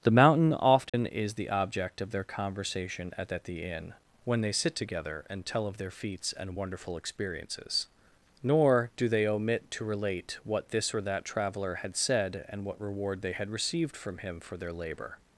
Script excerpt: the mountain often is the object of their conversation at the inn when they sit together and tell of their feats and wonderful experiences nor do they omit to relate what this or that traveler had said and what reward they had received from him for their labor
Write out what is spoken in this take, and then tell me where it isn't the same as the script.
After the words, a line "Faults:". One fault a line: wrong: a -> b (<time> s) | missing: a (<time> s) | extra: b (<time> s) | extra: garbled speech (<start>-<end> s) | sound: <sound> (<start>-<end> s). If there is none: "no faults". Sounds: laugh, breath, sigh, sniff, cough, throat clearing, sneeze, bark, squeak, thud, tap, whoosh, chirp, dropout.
the mountain often is the object of their conversation at at the inn when they sit together and tell of their feats and wonderful experiences nor do they omit to relate what this or that traveler had said and what reward they had received from him for their labor
Faults:
sound: dropout (0.9-0.9 s)
extra: at (3.3 s)